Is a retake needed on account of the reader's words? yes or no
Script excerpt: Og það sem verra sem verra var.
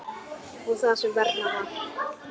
yes